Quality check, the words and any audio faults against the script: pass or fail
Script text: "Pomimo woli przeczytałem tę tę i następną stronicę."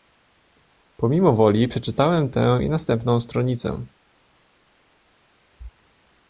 fail